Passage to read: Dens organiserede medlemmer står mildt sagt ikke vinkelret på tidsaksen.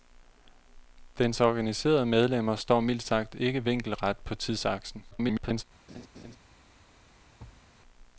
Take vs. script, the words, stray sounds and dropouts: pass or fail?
fail